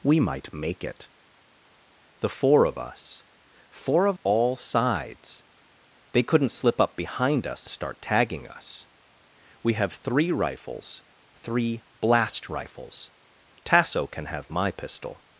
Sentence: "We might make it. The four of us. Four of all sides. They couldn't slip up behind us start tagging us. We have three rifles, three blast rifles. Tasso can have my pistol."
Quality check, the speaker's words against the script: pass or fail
pass